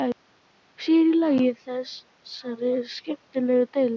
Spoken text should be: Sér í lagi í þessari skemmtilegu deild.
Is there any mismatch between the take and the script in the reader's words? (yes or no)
no